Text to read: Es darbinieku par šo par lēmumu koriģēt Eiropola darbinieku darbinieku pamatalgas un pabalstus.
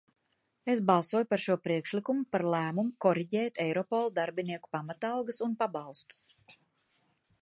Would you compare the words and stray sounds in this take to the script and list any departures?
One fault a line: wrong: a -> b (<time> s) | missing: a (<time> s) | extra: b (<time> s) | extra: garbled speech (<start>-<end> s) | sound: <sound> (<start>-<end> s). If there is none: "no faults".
wrong: darbinieku -> balsoju (0.9 s)
extra: priekšlikumu (1.7 s)
missing: darbinieku (4.7 s)